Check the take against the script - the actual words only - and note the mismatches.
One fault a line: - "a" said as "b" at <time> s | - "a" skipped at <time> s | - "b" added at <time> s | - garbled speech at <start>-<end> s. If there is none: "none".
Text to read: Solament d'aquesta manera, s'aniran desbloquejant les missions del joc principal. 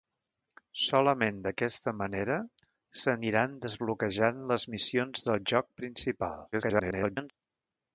- garbled speech at 6.5-7.3 s